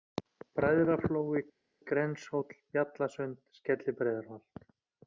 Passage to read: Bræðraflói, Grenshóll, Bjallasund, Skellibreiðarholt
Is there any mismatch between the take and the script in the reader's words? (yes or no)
no